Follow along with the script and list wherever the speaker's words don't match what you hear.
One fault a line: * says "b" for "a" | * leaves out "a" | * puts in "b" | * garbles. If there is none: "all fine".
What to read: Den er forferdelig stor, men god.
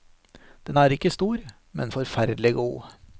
* says "ikke" for "forferdelig"
* puts in "forferdelig"